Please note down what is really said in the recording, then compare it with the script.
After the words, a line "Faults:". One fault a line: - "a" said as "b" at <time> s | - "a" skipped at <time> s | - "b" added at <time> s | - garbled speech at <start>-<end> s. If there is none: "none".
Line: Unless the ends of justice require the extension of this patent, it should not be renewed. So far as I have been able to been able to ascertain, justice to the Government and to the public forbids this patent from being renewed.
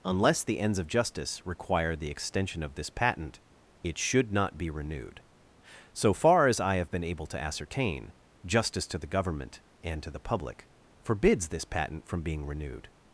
Unless the ends of justice require the extension of this patent, it should not be renewed. So far as I have been able to ascertain, justice to the Government and to the public forbids this patent from being renewed.
Faults:
- "been able to" skipped at 7.4 s